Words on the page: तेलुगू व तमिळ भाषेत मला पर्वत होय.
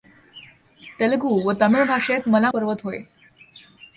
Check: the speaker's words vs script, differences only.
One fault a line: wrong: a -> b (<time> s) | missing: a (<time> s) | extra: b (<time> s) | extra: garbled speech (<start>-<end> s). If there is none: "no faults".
no faults